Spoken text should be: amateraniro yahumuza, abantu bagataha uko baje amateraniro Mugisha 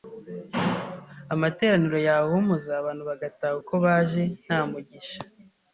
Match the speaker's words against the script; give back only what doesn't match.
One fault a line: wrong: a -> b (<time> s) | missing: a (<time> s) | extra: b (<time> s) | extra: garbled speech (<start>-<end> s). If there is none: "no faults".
wrong: amateraniro -> nta (4.4 s)